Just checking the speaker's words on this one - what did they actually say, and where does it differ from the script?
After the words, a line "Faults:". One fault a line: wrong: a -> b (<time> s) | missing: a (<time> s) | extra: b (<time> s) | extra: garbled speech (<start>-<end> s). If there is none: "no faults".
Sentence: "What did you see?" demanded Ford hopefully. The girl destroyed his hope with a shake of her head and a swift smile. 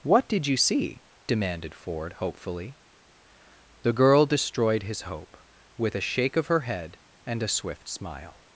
"What did you see?" demanded Ford hopefully. The girl destroyed his hope with a shake of her head and a swift smile.
Faults:
no faults